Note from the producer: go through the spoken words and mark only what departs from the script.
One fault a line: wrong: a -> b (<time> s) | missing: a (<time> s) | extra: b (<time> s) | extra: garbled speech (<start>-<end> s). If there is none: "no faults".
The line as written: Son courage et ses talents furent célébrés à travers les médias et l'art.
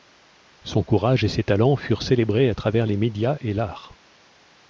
no faults